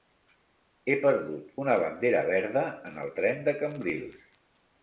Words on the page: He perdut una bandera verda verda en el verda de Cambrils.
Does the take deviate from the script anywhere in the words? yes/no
yes